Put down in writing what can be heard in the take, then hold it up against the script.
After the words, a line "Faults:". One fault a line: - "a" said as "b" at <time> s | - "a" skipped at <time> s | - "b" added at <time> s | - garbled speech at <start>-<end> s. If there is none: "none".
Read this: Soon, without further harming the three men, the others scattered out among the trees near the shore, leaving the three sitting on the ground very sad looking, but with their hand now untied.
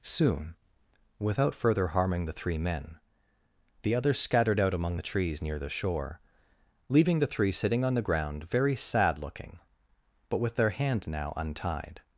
Soon, without further harming the three men, the others scattered out among the trees near the shore, leaving the three sitting on the ground very sad looking, but with their hand now untied.
Faults:
none